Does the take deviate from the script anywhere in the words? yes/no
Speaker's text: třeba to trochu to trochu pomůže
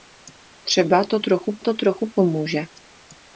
no